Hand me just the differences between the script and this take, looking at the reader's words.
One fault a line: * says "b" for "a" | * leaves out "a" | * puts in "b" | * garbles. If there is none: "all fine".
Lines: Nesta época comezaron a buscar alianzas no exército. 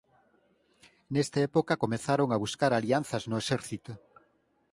all fine